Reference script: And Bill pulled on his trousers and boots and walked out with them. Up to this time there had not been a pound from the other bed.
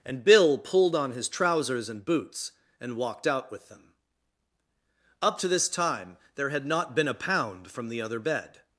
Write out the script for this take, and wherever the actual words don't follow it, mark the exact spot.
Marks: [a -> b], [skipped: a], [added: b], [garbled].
And Bill pulled on his trousers and boots and walked out with them. Up to this time there had not been a pound from the other bed.